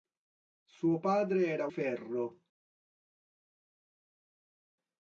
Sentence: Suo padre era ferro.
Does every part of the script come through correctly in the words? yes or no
yes